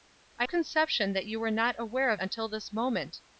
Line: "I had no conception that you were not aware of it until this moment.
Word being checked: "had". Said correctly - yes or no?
no